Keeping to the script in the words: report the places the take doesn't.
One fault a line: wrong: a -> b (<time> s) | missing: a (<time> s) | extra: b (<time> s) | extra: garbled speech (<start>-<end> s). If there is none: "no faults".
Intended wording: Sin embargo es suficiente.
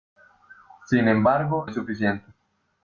no faults